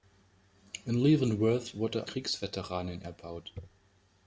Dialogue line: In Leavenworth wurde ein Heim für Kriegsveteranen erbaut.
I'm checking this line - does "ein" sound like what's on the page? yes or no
no